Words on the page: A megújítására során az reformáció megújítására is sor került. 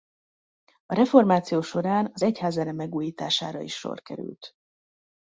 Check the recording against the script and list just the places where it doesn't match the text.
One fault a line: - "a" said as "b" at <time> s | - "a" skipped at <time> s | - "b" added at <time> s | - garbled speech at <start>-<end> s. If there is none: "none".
- "megújítására" said as "reformáció" at 0.9 s
- "reformáció" said as "egyházzene" at 2.2 s